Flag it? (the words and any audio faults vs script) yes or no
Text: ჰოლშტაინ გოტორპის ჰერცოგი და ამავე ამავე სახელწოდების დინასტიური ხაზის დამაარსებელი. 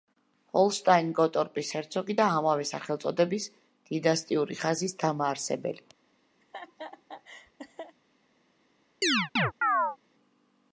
yes